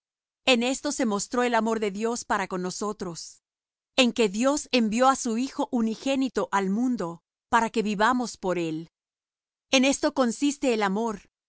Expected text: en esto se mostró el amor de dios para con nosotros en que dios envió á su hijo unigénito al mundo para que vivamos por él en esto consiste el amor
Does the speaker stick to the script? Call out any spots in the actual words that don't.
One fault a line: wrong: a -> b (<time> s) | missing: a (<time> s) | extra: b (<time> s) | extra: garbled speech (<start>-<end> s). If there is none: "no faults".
no faults